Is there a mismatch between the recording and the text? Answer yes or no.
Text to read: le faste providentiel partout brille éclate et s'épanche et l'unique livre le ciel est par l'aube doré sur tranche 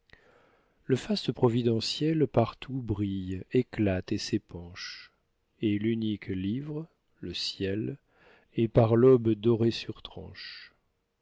no